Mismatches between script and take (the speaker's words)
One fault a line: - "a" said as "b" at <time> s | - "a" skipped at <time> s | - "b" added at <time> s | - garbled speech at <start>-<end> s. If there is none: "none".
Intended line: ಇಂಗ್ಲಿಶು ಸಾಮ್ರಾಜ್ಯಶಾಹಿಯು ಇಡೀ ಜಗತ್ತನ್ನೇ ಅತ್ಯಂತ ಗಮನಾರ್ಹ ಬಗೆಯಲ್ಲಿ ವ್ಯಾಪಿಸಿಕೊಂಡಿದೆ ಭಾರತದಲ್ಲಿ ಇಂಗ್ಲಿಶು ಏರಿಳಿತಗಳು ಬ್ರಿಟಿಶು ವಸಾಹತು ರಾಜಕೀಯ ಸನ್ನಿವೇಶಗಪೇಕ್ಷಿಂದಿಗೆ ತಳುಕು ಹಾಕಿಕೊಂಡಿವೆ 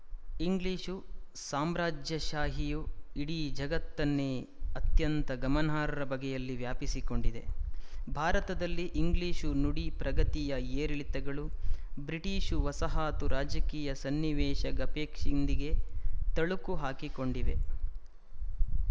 - "ನುಡಿ ಪ್ರಗತಿಯ" added at 9.6 s